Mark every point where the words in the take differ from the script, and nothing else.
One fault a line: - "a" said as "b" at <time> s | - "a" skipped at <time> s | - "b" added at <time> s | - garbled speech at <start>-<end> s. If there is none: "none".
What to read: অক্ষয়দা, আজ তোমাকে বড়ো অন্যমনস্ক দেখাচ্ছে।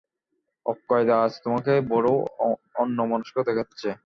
none